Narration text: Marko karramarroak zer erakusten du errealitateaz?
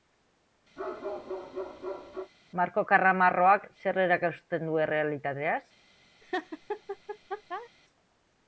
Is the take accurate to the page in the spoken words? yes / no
yes